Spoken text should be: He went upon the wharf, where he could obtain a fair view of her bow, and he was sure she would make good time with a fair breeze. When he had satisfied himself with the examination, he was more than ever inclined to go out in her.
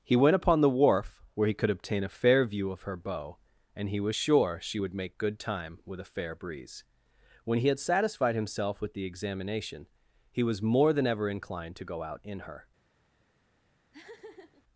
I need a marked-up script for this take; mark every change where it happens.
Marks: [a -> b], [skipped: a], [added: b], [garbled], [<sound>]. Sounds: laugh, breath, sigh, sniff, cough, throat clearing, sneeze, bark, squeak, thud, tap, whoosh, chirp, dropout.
He went upon the wharf, where he could obtain a fair view of her bow, and he was sure she would make good time with a fair breeze. When he had satisfied himself with the examination, he was more than ever inclined to go out in her. [laugh]